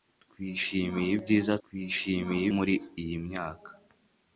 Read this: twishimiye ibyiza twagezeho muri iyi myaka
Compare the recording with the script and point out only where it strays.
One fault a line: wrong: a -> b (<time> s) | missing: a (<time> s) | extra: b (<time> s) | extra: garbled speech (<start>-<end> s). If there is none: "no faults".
wrong: twagezeho -> twishimiye (1.6 s)